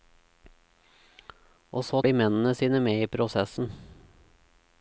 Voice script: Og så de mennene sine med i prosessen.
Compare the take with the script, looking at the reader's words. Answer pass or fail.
pass